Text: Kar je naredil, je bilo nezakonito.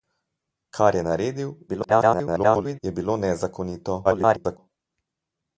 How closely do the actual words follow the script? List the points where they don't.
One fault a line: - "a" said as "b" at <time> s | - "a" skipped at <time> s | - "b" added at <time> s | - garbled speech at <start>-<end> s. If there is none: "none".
- garbled speech at 1.7-2.8 s
- garbled speech at 4.0-4.6 s